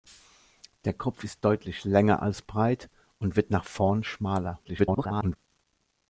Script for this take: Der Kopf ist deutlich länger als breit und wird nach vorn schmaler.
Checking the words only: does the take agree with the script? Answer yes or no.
no